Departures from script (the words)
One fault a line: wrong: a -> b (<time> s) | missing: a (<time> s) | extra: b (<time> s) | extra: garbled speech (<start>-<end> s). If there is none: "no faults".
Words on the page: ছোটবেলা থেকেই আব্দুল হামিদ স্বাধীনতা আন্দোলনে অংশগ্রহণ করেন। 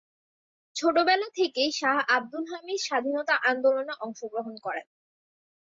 extra: শাহ (1.7 s)